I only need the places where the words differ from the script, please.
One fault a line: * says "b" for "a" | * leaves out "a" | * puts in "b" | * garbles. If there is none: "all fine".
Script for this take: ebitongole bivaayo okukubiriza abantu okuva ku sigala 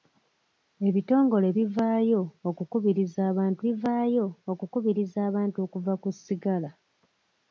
* puts in "bivaayo okukubiriza abantu"